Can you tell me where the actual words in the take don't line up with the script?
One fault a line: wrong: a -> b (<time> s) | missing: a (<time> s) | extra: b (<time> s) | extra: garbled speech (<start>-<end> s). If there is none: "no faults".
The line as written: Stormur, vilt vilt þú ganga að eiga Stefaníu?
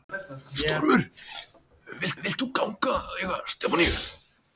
no faults